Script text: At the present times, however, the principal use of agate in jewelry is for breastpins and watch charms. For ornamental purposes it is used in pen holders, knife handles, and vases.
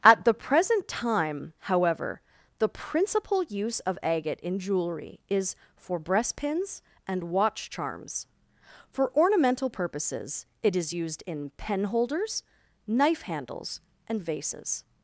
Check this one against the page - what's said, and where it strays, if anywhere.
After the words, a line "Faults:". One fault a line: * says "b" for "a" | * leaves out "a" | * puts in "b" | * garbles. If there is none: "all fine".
At the present time, however, the principal use of agate in jewelry is for breastpins and watch charms. For ornamental purposes it is used in pen holders, knife handles, and vases.
Faults:
* says "time" for "times"